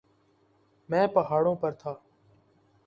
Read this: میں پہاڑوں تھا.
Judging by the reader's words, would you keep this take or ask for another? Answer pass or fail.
fail